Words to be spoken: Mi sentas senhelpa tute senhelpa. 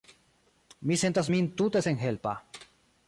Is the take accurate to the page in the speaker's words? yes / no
no